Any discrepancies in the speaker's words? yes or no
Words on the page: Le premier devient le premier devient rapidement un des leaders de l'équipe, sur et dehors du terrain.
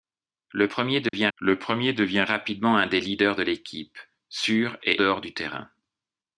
no